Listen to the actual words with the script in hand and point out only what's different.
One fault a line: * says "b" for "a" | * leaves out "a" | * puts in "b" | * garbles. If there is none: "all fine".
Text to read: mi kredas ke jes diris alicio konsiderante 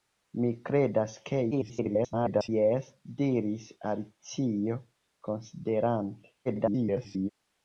* garbles
* garbles